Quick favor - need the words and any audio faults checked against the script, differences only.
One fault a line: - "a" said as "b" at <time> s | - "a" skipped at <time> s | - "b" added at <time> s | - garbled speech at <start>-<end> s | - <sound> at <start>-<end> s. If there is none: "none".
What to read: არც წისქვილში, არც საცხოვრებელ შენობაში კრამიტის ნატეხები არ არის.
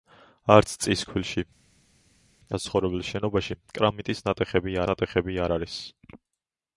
- "არც" skipped at 1.4 s
- "ნატეხები" added at 4.9 s